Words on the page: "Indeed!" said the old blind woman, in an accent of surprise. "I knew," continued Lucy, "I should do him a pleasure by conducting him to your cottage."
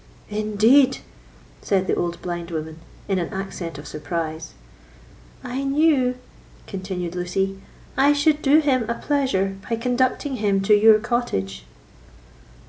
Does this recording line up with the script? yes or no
yes